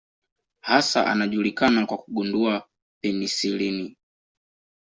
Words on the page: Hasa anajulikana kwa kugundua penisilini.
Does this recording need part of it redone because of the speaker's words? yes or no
no